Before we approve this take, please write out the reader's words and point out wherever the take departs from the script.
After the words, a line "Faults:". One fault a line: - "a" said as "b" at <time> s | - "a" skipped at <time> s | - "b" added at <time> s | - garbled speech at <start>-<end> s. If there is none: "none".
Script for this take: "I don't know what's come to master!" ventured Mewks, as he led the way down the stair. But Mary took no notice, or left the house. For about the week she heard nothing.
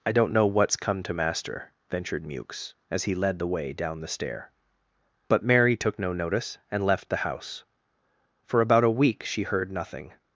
"I don't know what's come to master!" ventured Mewks, as he led the way down the stair. But Mary took no notice, and left the house. For about a week she heard nothing.
Faults:
- "or" said as "and" at 6.7 s
- "the" said as "a" at 8.8 s